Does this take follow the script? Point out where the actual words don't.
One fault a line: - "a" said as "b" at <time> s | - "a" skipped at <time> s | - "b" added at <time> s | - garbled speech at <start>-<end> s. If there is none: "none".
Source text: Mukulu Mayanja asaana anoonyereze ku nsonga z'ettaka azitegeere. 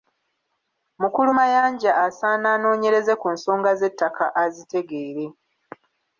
none